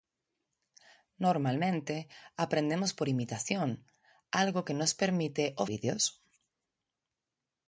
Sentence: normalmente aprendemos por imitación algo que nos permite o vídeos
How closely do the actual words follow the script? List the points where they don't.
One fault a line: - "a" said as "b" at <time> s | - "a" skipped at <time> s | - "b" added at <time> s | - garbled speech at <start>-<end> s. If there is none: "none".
none